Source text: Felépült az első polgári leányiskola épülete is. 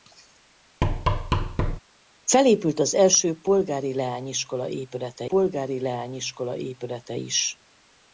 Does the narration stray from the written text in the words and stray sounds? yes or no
yes